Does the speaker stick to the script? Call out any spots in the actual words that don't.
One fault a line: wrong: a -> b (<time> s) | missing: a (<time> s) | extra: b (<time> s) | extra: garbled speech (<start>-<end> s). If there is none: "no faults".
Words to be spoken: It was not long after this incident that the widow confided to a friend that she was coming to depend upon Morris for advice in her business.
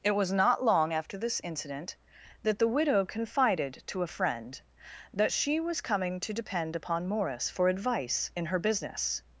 no faults